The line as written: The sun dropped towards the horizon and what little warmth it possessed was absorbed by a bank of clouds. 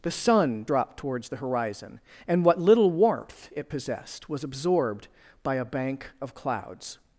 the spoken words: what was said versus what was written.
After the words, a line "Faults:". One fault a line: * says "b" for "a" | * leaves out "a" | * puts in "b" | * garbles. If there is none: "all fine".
The sun dropped towards the horizon and what little warmth it possessed was absorbed by a bank of clouds.
Faults:
all fine